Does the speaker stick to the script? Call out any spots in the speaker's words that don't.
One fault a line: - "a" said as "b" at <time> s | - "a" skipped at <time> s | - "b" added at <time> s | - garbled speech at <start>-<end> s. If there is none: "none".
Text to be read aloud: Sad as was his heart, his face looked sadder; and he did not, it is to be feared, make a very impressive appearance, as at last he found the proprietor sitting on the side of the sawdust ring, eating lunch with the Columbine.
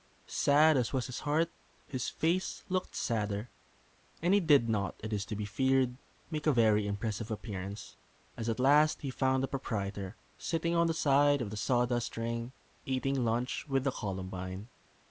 none